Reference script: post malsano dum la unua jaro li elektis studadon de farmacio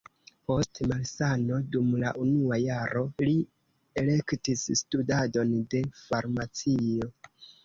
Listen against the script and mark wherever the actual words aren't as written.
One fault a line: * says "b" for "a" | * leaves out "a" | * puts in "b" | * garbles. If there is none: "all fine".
all fine